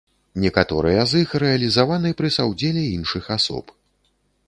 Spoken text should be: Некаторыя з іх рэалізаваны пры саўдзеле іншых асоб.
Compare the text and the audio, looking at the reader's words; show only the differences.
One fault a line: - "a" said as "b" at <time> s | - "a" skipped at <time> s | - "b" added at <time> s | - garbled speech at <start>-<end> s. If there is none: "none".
none